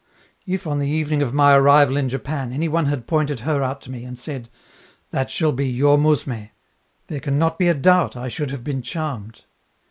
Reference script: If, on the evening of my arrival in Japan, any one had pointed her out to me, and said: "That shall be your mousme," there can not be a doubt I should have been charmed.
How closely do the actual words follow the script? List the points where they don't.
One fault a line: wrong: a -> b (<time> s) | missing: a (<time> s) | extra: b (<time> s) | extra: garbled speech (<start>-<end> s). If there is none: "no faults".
no faults